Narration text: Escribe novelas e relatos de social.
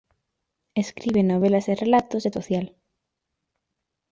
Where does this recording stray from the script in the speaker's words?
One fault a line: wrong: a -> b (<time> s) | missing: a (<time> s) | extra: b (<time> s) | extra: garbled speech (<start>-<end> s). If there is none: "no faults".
no faults